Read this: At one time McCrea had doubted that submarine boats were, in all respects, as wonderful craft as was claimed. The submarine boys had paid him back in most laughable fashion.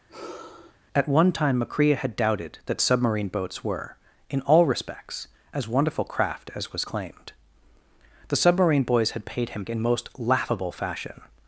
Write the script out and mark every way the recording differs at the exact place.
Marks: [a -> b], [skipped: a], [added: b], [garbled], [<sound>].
[sigh] At one time McCrea had doubted that submarine boats were, in all respects, as wonderful craft as was claimed. The submarine boys had paid him [skipped: back] in most laughable fashion.